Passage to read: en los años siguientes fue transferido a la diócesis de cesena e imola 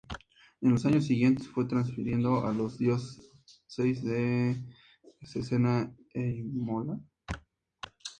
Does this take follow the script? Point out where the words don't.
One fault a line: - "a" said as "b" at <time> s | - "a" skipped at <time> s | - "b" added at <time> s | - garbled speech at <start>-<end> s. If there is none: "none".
none